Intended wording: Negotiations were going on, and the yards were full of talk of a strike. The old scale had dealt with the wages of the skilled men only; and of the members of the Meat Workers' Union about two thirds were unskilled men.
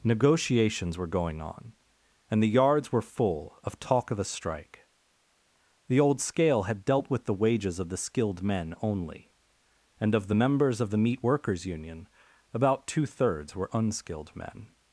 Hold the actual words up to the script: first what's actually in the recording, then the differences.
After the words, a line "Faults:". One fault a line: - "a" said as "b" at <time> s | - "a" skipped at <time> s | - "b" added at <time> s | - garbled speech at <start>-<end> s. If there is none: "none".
Negotiations were going on, and the yards were full of talk of a strike. The old scale had dealt with the wages of the skilled men only; and of the members of the Meat Workers' Union about two thirds were unskilled men.
Faults:
none